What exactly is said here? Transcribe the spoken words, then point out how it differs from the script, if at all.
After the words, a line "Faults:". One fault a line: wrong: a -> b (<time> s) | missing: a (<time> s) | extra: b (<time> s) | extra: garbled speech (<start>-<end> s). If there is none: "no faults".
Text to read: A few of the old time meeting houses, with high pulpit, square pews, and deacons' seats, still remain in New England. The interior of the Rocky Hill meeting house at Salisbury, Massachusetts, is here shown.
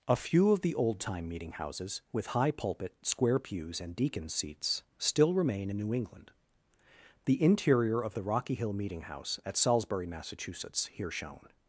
A few of the old time meeting houses, with high pulpit, square pews, and deacons' seats, still remain in New England. The interior of the Rocky Hill meeting house at Salisbury, Massachusetts, here shown.
Faults:
missing: is (10.9 s)